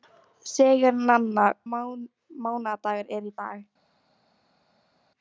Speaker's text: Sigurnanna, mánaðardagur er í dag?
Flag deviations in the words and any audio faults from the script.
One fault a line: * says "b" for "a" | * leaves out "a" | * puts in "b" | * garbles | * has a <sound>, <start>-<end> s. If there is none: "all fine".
all fine